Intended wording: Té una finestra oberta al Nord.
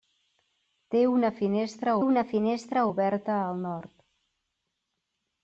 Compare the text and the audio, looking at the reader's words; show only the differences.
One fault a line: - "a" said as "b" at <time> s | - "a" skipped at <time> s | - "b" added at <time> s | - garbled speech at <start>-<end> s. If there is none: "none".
- "una finestra" added at 2.0 s